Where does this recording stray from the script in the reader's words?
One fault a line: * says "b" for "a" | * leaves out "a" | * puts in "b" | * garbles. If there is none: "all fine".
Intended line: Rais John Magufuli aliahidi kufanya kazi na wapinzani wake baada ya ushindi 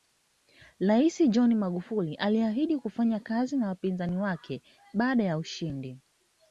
all fine